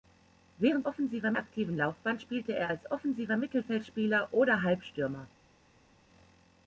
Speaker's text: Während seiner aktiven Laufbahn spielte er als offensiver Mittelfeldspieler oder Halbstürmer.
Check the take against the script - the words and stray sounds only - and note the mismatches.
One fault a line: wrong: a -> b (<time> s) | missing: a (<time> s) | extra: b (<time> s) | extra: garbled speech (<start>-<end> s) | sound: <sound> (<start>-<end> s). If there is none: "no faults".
wrong: seiner -> offensiver (0.9 s)